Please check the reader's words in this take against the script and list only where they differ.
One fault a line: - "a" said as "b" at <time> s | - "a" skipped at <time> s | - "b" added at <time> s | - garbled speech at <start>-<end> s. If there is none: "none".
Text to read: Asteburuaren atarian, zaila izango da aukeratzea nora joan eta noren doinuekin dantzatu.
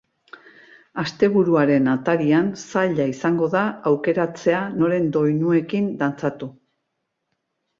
- "nora joan eta" skipped at 4.6 s